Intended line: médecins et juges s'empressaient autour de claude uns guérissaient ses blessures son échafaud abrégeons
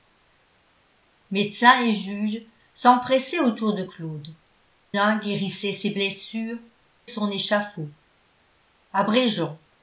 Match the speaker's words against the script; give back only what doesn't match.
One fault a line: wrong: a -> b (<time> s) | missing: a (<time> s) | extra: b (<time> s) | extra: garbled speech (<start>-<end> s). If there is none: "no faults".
no faults